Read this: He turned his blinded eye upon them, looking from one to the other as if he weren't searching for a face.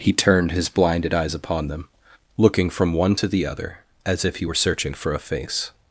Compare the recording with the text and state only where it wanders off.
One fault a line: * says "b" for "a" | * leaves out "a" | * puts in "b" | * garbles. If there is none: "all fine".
* says "eyes" for "eye"
* says "were" for "weren't"